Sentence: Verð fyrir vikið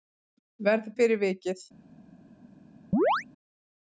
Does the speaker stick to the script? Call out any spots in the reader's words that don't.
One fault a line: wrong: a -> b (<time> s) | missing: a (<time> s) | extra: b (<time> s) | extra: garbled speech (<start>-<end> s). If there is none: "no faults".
no faults